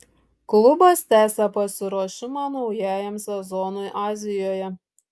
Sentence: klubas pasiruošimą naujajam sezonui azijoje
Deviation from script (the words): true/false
true